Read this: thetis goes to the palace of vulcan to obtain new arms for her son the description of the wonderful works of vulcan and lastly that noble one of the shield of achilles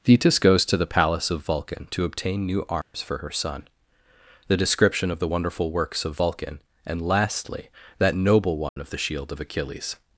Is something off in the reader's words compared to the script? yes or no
no